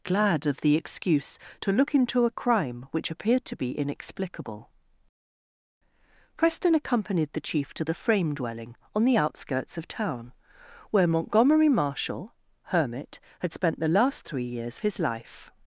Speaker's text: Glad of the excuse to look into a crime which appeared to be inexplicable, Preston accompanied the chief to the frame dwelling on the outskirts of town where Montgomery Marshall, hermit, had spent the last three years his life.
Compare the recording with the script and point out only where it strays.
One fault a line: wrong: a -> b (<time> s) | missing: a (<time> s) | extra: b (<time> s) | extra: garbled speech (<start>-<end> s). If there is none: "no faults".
no faults